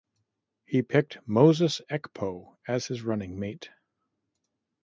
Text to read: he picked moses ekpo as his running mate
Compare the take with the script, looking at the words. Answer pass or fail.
pass